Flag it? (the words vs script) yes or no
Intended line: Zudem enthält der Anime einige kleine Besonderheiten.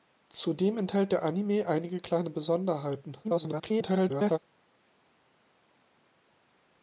yes